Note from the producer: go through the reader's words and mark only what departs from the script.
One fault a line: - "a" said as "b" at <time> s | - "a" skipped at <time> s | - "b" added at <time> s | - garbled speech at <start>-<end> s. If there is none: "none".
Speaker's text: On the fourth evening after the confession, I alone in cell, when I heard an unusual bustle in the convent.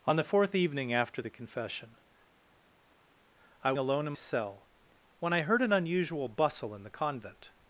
none